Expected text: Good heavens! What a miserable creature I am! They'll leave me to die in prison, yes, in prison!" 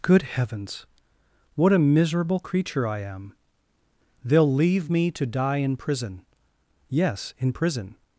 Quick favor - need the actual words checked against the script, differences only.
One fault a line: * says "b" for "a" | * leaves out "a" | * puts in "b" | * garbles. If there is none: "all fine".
all fine